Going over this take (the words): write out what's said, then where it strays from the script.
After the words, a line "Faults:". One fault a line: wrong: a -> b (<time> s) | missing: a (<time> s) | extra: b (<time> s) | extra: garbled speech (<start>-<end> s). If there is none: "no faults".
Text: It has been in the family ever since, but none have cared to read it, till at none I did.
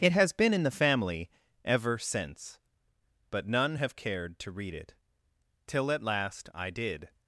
It has been in the family ever since, but none have cared to read it, till at last I did.
Faults:
wrong: none -> last (6.0 s)